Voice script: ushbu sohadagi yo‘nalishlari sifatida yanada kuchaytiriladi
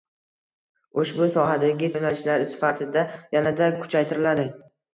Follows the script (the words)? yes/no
yes